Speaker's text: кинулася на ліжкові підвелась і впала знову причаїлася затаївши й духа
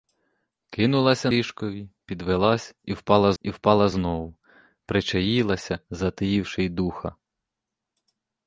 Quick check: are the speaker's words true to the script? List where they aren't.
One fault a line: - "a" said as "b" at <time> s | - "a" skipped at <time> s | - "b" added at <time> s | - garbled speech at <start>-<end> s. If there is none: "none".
- "на" skipped at 1.3 s
- "і впала" added at 3.4 s